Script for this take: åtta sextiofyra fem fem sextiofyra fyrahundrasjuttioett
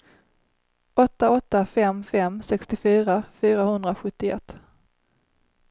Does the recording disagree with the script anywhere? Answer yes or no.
yes